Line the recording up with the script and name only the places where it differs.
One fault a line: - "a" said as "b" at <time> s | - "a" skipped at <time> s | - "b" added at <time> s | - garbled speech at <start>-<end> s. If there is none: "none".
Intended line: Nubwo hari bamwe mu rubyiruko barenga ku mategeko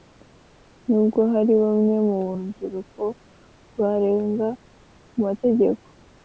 none